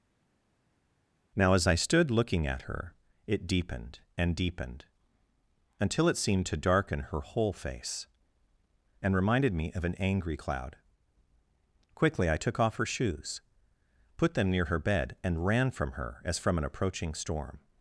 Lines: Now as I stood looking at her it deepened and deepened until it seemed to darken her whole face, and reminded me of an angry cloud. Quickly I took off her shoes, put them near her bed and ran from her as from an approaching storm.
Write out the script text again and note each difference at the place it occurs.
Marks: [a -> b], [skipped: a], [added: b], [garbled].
Now as I stood looking at her it deepened and deepened until it seemed to darken her whole face, and reminded me of an angry cloud. Quickly I took off her shoes, put them near her bed and ran from her as from an approaching storm.